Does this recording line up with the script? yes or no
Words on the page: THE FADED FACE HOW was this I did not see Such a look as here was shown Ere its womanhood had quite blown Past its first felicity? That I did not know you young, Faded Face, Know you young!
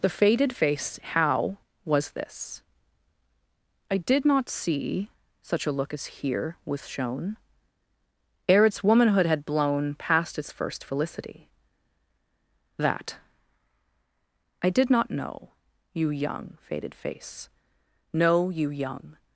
no